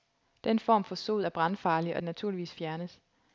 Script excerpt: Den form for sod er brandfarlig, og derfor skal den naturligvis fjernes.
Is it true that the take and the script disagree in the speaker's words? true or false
true